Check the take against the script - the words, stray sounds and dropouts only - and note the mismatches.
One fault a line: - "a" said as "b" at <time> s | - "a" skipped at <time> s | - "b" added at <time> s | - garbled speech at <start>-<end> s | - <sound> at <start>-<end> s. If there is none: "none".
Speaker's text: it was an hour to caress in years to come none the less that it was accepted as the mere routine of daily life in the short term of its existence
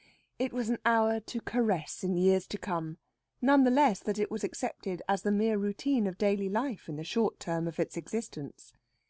none